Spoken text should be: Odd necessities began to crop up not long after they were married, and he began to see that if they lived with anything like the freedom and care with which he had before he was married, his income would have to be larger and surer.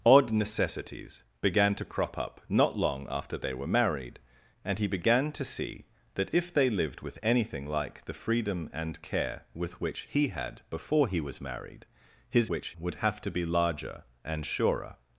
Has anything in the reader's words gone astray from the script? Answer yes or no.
yes